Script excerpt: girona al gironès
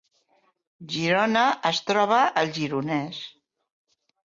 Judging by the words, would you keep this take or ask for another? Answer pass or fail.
fail